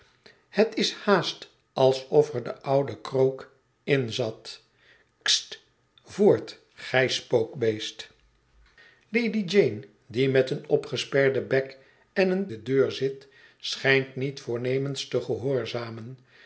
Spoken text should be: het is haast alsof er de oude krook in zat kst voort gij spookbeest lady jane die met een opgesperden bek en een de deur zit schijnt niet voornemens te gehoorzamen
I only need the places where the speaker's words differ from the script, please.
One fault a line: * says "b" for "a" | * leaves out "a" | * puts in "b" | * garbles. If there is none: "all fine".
all fine